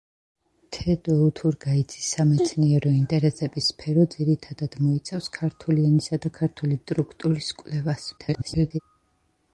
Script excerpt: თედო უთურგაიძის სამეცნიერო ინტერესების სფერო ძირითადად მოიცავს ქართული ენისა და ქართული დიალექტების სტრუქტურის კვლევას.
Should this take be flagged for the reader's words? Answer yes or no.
yes